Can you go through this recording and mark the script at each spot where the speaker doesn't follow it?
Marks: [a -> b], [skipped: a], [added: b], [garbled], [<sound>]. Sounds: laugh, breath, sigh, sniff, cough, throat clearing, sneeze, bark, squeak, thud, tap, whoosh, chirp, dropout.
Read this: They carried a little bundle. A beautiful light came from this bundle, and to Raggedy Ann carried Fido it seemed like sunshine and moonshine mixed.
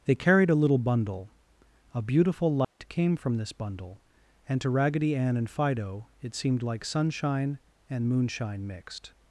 They carried a little bundle. A beautiful light [dropout] came from this bundle, and to Raggedy Ann [carried -> and] Fido it seemed like sunshine and moonshine mixed.